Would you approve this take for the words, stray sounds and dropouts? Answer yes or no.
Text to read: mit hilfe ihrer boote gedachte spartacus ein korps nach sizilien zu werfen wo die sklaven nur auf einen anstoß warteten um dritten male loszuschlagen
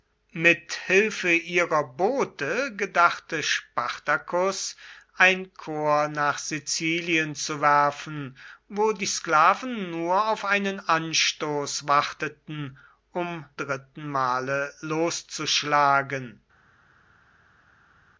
yes